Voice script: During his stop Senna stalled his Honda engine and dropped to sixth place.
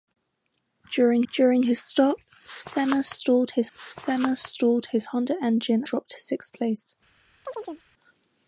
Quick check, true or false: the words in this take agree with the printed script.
false